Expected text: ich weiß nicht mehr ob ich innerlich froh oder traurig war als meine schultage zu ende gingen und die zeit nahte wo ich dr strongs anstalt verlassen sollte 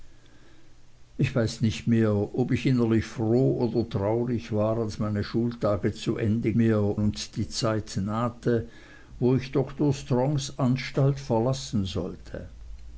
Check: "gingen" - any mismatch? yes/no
yes